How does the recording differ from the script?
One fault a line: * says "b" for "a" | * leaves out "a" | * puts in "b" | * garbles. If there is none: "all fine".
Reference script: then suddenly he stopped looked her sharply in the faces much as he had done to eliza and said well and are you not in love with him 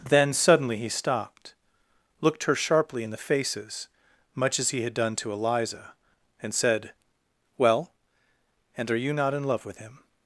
all fine